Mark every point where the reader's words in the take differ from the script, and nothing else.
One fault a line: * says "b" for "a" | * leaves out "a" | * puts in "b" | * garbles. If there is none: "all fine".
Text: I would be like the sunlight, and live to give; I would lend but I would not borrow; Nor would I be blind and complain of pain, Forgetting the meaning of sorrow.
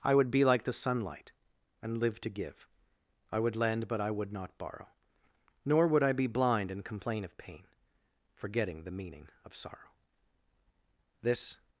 * puts in "This"